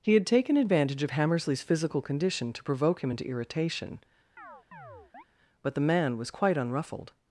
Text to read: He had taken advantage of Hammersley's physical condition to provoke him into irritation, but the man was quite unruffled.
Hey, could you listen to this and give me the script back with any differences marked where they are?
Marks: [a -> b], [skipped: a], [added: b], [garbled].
He had taken advantage of Hammersley's physical condition to provoke him into irritation, but the man was quite unruffled.